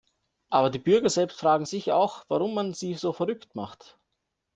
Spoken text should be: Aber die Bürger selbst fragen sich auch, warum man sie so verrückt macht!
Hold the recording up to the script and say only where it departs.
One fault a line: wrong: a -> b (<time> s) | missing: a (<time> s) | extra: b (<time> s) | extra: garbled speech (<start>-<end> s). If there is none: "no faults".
no faults